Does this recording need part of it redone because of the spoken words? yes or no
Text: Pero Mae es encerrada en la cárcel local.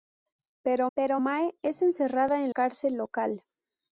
yes